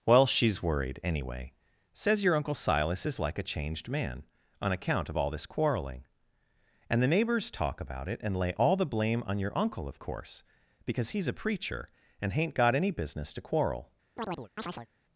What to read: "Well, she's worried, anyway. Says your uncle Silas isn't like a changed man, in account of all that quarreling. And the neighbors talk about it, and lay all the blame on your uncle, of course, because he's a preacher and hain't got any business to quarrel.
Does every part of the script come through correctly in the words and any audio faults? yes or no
no